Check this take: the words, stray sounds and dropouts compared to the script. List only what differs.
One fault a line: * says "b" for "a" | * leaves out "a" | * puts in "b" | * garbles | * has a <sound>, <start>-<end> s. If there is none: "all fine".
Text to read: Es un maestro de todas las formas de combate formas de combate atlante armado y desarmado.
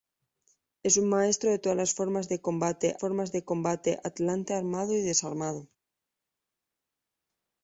all fine